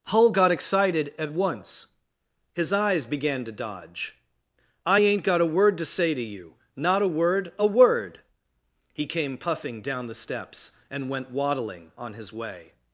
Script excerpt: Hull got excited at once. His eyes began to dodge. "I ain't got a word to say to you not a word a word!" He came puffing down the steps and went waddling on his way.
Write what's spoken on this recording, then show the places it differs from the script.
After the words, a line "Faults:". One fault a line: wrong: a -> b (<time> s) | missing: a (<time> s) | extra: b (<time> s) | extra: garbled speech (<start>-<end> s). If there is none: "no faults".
Hull got excited at once. His eyes began to dodge. "I ain't got a word to say to you not a word a word!" He came puffing down the steps and went waddling on his way.
Faults:
no faults